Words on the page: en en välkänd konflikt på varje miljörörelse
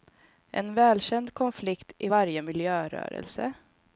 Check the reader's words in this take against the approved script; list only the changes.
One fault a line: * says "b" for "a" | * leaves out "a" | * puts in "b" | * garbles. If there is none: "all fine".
* leaves out "en"
* says "i" for "på"